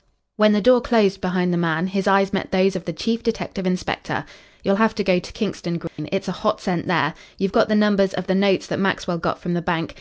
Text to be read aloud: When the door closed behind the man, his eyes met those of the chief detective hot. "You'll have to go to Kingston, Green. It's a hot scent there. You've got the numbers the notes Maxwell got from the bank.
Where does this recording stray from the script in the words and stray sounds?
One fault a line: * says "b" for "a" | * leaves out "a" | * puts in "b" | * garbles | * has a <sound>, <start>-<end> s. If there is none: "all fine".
* says "inspector" for "hot"
* has a dropout, 5.9-6.0 s
* puts in "of"
* puts in "that"